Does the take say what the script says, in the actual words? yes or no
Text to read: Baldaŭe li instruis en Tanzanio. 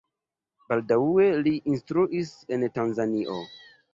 yes